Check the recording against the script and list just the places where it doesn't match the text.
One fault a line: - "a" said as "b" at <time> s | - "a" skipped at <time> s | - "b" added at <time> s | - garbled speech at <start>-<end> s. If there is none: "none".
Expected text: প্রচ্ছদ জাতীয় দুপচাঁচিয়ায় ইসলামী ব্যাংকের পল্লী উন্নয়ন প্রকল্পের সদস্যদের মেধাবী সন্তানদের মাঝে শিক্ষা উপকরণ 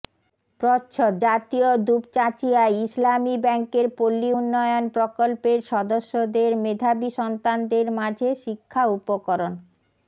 none